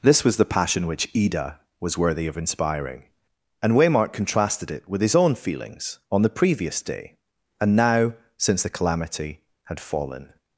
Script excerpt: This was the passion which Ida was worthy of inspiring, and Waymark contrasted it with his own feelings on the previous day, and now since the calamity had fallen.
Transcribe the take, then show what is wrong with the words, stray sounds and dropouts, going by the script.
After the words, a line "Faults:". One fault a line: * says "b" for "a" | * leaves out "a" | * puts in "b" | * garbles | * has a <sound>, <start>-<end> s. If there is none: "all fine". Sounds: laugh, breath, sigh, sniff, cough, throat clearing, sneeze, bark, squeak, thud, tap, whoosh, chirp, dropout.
This was the passion which Ida was worthy of inspiring, and Waymark contrasted it with his own feelings on the previous day, and now since the calamity had fallen.
Faults:
all fine